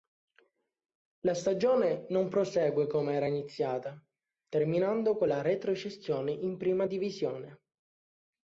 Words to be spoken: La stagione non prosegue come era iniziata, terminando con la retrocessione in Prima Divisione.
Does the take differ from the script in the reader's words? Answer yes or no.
no